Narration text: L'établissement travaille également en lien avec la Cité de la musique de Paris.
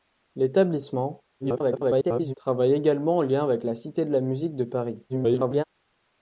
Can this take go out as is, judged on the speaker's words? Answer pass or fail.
fail